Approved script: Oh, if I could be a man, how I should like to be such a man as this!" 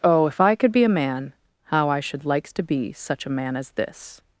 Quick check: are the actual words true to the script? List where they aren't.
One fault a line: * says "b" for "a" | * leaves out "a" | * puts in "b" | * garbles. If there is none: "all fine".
* says "likes" for "like"